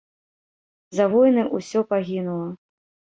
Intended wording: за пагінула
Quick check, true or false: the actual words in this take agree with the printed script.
false